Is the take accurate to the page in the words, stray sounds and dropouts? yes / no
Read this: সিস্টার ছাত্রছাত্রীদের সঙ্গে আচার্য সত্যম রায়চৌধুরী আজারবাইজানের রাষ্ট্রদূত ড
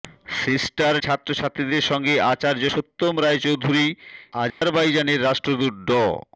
no